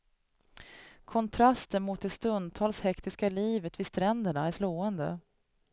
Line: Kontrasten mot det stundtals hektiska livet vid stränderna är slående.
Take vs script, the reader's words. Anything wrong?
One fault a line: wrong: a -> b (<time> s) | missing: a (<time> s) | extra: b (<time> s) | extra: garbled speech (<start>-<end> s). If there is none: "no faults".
no faults